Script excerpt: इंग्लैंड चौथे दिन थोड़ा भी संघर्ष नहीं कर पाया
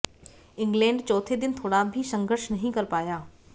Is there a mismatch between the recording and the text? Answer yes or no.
no